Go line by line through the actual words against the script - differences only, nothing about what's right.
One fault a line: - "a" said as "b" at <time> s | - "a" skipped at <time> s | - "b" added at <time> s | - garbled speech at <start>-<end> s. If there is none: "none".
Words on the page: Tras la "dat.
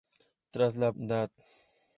none